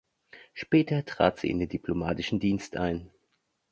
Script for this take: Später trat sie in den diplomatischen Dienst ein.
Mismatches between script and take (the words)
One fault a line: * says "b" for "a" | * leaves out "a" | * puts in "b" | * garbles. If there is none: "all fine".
all fine